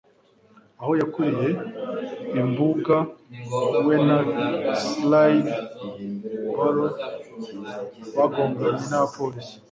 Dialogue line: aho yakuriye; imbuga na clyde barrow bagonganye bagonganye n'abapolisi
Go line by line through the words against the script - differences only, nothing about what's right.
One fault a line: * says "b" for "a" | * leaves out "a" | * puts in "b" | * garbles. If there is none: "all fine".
* puts in "we"
* leaves out "bagonganye"